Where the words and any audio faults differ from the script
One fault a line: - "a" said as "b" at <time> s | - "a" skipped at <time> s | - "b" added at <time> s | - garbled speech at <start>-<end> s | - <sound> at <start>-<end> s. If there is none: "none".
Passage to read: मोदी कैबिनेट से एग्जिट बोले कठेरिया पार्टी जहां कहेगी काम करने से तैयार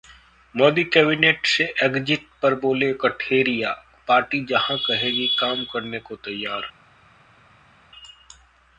- "पर" added at 2.4 s
- "से" said as "को" at 6.0 s